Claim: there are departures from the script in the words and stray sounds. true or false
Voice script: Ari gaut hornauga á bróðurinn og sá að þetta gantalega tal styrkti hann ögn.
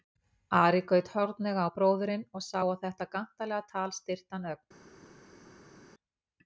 false